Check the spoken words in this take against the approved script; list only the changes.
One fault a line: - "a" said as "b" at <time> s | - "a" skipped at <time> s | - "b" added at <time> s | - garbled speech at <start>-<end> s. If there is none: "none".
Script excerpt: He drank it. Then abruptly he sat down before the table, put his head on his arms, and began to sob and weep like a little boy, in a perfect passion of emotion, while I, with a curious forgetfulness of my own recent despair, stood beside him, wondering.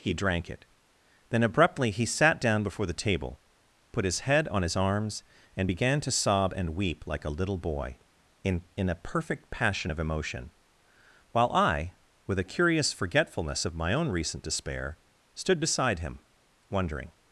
- "in" added at 8.8 s